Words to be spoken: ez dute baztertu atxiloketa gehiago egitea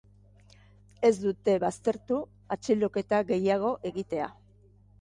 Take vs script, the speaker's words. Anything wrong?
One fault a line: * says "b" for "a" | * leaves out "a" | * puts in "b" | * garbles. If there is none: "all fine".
all fine